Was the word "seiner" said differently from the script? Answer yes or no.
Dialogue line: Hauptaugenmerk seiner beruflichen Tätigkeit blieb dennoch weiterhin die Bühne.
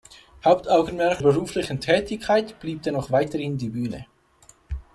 yes